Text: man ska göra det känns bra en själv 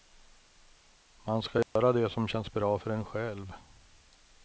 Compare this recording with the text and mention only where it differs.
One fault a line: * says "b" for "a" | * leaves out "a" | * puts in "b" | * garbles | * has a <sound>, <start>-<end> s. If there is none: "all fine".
* has a dropout, 1.6-1.8 s
* puts in "som"
* puts in "för"